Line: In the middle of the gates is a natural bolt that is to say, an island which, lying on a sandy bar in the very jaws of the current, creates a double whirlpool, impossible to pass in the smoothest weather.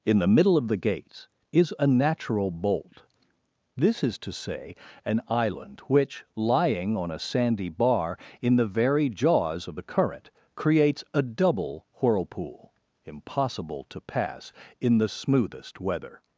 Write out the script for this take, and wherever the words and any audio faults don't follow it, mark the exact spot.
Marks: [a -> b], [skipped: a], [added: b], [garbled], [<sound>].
In the middle of the gates is a natural bolt [that -> this] is to say, an island which, lying on a sandy bar in the very jaws of the current, creates a double whirlpool, impossible to pass in the smoothest weather.